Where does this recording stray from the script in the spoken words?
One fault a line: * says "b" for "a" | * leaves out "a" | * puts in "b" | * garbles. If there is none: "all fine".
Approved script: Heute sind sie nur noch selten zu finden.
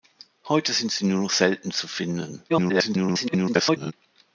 * garbles